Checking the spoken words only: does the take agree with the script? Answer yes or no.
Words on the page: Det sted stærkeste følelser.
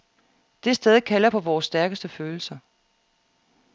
no